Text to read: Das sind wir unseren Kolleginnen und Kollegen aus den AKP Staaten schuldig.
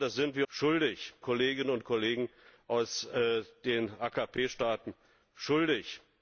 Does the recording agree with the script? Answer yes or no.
no